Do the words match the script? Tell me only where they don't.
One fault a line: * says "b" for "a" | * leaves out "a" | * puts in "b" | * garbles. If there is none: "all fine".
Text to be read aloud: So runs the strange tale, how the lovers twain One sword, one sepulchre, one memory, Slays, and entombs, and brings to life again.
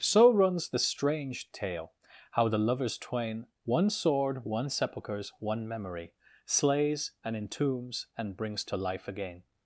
* says "sepulchres" for "sepulchre"